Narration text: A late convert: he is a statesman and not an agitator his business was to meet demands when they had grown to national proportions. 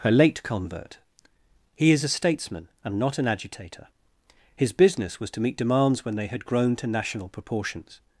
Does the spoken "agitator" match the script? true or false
true